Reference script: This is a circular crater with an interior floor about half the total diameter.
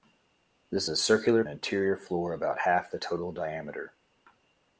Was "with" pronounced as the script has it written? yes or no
no